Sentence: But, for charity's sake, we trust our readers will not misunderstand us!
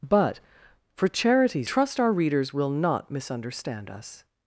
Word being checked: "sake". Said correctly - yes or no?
no